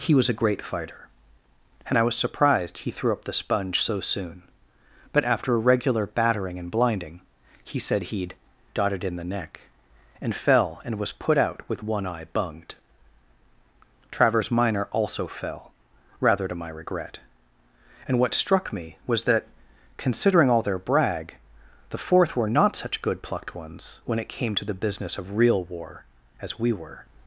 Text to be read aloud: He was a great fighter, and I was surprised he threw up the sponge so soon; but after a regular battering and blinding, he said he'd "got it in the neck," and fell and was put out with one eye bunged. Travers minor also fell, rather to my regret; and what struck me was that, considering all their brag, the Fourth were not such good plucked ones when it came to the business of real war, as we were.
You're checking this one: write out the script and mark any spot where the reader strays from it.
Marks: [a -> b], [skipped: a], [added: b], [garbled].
He was a great fighter, and I was surprised he threw up the sponge so soon; but after a regular battering and blinding, he said he'd ["got it -> dotted] in the neck," and fell and was put out with one eye bunged. Travers minor also fell, rather to my regret; and what struck me was that, considering all their brag, the Fourth were not such good plucked ones when it came to the business of real war, as we were.